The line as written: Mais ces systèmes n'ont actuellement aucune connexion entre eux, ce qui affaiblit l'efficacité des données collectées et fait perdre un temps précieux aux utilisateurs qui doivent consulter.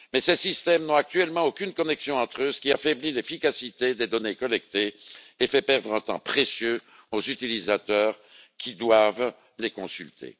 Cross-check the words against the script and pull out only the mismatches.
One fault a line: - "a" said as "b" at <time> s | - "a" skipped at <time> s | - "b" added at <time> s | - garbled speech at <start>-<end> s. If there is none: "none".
- "les" added at 9.6 s